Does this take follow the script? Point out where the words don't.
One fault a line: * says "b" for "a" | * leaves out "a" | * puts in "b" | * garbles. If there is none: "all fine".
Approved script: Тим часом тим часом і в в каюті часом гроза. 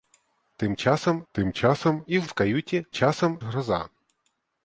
all fine